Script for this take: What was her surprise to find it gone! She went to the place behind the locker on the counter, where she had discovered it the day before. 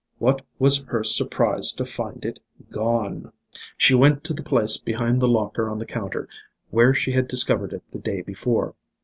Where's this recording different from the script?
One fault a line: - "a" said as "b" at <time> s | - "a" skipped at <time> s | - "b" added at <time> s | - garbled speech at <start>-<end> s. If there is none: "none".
none